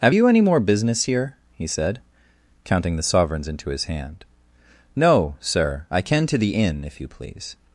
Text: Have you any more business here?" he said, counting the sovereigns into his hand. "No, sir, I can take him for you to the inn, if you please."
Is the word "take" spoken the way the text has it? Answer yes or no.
no